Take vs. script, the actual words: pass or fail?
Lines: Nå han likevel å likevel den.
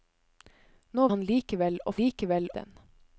pass